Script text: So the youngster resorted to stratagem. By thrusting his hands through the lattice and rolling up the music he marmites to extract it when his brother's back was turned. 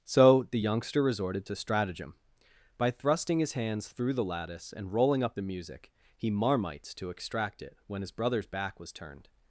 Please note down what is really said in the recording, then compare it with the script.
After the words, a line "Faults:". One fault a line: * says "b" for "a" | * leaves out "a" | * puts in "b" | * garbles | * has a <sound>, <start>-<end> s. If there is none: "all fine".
So the youngster resorted to stratagem. By thrusting his hands through the lattice and rolling up the music he marmites to extract it when his brother's back was turned.
Faults:
all fine